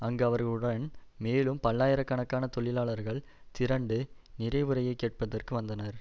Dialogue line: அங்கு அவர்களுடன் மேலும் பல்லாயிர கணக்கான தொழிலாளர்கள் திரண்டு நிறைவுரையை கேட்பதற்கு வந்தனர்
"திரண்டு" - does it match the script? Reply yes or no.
yes